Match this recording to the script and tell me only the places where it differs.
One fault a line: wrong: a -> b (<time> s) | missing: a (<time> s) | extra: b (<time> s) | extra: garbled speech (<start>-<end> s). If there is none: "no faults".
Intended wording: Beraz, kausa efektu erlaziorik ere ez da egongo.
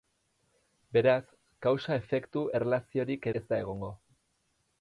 missing: ere (3.3 s)